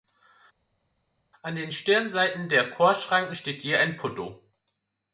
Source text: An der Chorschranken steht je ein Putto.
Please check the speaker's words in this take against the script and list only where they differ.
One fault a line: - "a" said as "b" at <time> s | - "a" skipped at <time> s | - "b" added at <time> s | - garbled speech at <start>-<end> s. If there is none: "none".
- "den Stirnseiten" added at 1.5 s